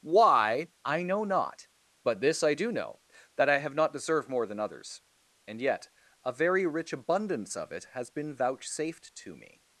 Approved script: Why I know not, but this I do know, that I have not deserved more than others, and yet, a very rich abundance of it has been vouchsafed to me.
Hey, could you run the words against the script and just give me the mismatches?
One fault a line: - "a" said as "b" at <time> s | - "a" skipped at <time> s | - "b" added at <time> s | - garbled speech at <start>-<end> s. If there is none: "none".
none